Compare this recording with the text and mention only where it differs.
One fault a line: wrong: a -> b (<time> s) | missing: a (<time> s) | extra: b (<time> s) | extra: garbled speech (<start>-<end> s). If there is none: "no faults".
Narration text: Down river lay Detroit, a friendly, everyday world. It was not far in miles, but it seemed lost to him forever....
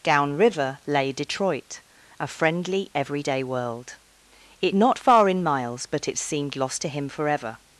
missing: was (4.8 s)